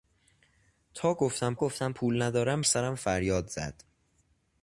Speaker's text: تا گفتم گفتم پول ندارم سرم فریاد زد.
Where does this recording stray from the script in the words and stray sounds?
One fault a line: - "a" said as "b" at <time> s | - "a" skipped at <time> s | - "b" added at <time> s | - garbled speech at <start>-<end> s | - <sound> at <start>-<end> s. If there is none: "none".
none